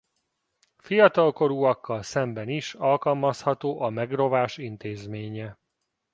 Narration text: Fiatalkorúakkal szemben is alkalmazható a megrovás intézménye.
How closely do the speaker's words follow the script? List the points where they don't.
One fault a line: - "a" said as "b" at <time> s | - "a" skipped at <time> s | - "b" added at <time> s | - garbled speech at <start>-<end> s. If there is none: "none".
none